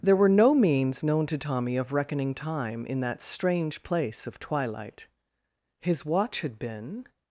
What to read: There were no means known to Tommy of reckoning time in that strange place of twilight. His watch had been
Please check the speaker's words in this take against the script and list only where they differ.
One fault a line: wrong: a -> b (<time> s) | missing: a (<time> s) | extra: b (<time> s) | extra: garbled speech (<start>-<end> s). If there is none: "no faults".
no faults